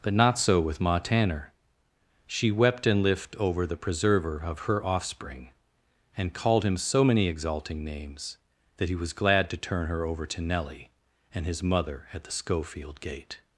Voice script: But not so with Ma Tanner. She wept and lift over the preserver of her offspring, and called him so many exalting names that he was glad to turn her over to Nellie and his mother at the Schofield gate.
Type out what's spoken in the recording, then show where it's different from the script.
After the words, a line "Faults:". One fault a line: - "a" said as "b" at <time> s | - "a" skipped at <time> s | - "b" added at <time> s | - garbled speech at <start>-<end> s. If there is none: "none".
But not so with Ma Tanner. She wept and lift over the preserver of her offspring, and called him so many exalting names that he was glad to turn her over to Nellie and his mother at the Schofield gate.
Faults:
none